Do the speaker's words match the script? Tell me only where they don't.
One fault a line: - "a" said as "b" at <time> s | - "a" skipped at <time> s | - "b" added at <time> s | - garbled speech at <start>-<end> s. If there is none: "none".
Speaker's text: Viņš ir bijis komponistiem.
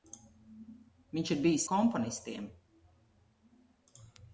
none